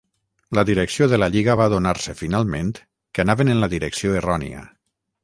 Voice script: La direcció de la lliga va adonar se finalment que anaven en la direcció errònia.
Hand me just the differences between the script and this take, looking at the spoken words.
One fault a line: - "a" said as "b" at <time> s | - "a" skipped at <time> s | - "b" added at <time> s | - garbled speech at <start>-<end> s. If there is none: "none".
none